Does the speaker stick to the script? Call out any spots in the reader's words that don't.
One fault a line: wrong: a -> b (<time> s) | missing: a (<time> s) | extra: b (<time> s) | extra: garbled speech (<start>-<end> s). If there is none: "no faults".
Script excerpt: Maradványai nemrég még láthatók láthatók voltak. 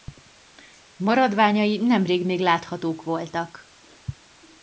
missing: láthatók (3.0 s)